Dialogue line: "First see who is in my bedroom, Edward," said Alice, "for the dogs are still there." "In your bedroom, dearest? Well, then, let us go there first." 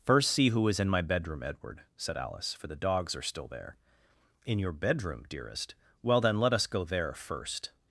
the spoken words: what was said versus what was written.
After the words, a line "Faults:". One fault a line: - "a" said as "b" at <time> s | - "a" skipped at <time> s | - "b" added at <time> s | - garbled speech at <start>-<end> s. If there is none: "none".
"First see who is in my bedroom, Edward," said Alice, "for the dogs are still there." "In your bedroom, dearest? Well, then, let us go there first."
Faults:
none